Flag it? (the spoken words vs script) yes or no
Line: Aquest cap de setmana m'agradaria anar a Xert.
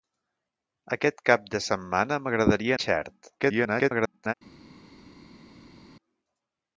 yes